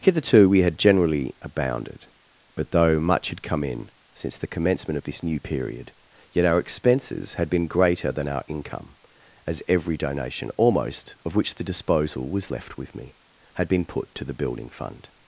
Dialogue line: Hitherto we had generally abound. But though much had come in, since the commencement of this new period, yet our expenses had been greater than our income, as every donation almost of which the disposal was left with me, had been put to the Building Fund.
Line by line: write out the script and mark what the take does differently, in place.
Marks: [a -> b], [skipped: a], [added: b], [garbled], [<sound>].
Hitherto we had generally [abound. -> abounded] But though much had come in, since the commencement of this new period, yet our expenses had been greater than our income, as every donation almost of which the disposal was left with me, had been put to the Building Fund.